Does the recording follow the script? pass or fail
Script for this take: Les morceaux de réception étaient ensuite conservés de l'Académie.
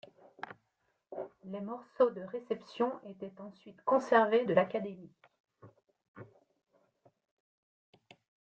pass